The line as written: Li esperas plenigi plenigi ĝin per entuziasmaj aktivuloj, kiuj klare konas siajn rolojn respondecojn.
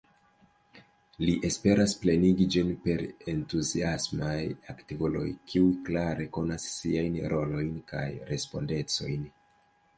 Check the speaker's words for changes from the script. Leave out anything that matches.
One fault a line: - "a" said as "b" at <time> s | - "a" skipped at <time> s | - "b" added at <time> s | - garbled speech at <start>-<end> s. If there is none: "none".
- "plenigi" skipped at 2.5 s
- "kaj" added at 8.0 s